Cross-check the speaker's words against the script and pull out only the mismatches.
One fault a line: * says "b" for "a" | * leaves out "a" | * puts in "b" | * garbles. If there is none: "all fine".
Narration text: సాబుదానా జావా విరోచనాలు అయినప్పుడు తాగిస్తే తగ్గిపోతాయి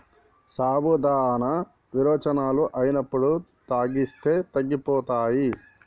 * leaves out "జావా"